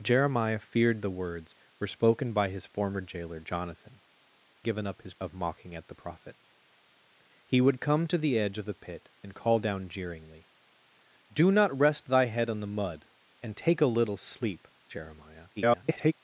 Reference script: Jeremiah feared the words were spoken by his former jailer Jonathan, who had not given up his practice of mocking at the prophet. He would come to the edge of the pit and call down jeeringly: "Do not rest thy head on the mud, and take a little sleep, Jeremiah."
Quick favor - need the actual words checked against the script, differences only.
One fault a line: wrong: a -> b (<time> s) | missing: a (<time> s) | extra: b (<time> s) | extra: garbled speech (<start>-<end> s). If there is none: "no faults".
missing: who had not (4.0 s)
missing: practice (5.1 s)
extra: garbled speech (15.6-16.1 s)